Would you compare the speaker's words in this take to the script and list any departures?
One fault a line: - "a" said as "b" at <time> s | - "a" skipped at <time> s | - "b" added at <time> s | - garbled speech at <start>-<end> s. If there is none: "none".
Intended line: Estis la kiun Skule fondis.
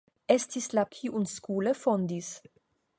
none